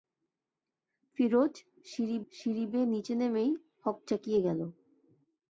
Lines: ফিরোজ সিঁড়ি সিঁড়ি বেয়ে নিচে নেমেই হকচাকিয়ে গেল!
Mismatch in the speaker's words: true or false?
false